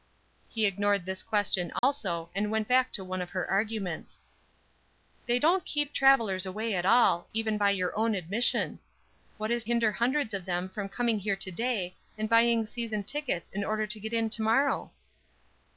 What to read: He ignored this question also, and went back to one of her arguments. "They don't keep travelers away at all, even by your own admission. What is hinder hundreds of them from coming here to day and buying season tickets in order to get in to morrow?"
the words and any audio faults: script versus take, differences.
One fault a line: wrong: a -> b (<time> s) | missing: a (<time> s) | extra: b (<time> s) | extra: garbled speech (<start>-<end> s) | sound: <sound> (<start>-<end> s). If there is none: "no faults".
sound: dropout (1.8-1.8 s)